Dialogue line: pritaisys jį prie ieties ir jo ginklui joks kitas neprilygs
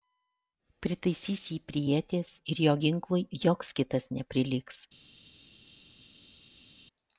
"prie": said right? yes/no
yes